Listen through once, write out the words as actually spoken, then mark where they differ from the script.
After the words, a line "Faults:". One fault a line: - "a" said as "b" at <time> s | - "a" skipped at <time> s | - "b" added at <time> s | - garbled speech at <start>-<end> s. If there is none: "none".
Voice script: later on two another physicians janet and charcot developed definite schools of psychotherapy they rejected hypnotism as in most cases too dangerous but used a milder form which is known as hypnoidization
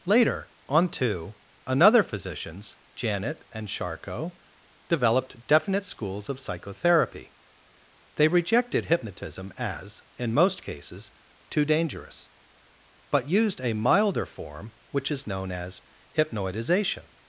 later on two another physicians janet and charcot developed definite schools of psychotherapy they rejected hypnotism as in most cases too dangerous but used a milder form which is known as hypnoidization
Faults:
none